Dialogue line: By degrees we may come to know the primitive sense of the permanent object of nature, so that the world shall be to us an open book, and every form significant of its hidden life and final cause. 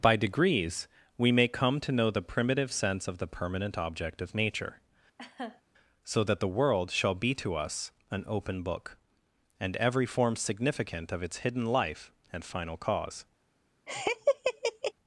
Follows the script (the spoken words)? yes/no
yes